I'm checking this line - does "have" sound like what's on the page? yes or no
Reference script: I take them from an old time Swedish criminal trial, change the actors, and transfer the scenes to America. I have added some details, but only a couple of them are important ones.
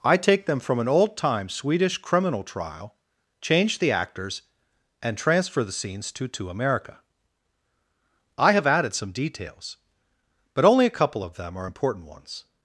yes